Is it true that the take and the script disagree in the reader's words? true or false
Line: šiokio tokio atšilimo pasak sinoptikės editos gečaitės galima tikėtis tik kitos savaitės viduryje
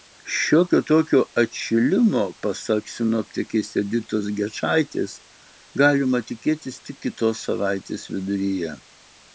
false